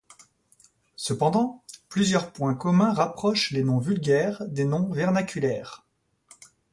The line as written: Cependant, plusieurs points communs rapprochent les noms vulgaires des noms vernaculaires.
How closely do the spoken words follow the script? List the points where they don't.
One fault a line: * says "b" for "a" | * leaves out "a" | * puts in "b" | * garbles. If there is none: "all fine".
all fine